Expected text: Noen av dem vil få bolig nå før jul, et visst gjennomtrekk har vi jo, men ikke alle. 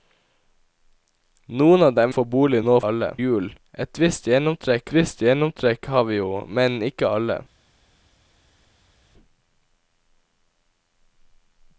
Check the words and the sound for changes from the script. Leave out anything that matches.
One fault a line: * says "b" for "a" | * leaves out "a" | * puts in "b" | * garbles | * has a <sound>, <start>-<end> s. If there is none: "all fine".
* leaves out "vil"
* says "alle" for "før"
* puts in "visst gjennomtrekk"